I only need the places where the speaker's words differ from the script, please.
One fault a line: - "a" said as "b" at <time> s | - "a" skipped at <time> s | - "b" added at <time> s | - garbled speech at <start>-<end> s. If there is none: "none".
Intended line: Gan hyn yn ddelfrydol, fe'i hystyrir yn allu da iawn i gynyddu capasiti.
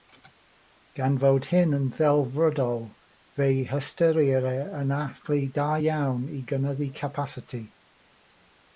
- "fod" added at 1.2 s